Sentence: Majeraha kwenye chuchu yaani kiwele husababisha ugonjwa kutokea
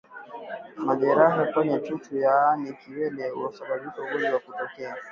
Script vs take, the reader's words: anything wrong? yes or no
no